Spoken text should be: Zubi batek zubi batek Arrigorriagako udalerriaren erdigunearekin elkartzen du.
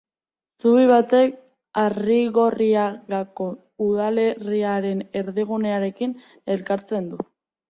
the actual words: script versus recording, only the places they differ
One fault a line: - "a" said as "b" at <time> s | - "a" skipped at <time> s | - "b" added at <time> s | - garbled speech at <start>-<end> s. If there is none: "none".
- "zubi batek" skipped at 1.4 s